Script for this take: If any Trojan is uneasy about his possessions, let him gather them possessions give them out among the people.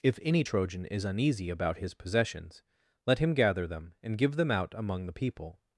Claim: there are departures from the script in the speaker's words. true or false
true